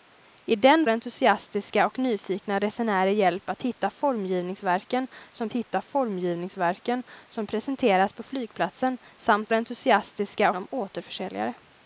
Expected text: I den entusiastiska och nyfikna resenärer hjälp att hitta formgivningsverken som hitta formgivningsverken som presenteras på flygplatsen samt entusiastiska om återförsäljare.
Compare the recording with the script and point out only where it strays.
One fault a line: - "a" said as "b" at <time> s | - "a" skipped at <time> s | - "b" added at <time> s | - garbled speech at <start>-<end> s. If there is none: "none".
none